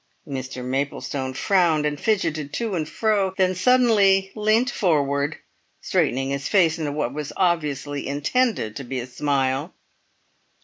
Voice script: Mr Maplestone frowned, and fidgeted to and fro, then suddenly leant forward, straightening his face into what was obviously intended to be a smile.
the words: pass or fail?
pass